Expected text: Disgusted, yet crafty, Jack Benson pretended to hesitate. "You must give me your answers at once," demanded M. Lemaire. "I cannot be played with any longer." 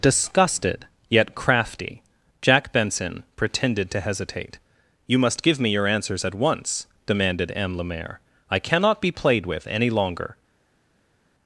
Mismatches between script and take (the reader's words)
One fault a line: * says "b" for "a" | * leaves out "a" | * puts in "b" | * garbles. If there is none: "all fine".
all fine